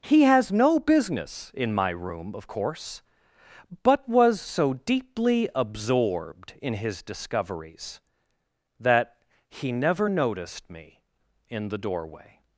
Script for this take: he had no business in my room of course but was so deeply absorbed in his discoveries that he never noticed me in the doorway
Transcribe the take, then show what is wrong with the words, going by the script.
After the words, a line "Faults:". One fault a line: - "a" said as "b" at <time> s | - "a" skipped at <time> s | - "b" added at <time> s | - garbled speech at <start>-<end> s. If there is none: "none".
he has no business in my room of course but was so deeply absorbed in his discoveries that he never noticed me in the doorway
Faults:
- "had" said as "has" at 0.2 s